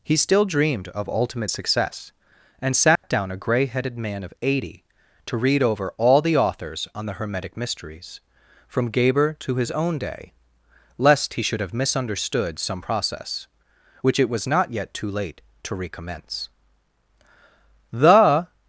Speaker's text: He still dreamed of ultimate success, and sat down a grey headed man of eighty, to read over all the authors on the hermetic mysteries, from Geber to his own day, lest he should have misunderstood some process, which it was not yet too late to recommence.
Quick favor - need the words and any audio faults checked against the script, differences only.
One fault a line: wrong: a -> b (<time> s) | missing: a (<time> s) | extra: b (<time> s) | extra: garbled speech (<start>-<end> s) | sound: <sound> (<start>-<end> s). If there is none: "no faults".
sound: dropout (3.0-3.0 s)
extra: The (17.9 s)